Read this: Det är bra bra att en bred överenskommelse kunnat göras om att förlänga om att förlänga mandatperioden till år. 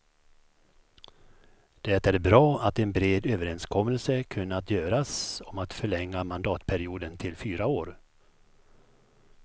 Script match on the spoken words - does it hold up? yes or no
no